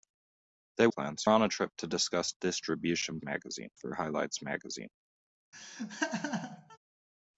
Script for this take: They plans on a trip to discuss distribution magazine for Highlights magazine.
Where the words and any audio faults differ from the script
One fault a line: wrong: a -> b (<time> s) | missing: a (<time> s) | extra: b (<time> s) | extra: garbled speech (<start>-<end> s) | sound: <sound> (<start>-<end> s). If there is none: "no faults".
sound: laugh (5.5-6.8 s)